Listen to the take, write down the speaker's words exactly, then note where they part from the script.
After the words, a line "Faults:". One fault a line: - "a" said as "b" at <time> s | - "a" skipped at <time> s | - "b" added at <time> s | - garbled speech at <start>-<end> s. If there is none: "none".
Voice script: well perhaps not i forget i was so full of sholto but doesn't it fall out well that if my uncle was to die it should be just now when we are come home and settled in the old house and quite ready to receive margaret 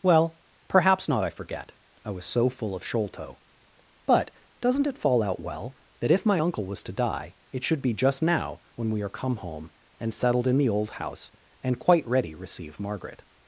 well perhaps not i forget i was so full of sholto but doesn't it fall out well that if my uncle was to die it should be just now when we are come home and settled in the old house and quite ready receive margaret
Faults:
- "to" skipped at 12.3 s